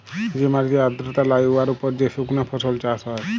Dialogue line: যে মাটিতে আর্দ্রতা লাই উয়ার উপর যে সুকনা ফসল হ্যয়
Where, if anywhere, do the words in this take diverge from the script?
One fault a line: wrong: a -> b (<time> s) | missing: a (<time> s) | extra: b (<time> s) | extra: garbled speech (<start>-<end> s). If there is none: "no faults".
extra: চাষ (2.8 s)